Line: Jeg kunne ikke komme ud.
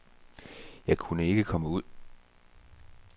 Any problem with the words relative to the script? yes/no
no